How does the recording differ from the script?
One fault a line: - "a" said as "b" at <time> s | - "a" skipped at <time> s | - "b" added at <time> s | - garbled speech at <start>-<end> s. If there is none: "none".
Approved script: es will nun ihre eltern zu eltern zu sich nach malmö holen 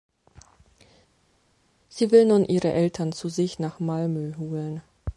- "es" said as "sie" at 1.9 s
- "eltern zu" skipped at 3.3 s